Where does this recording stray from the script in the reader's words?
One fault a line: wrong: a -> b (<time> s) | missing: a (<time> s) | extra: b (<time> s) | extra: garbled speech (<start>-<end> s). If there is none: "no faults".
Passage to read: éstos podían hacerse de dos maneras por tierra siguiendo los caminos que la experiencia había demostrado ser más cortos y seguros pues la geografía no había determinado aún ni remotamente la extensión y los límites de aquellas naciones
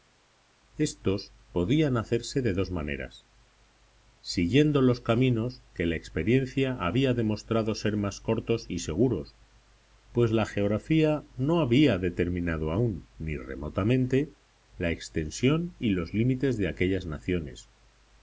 missing: por tierra (3.3 s)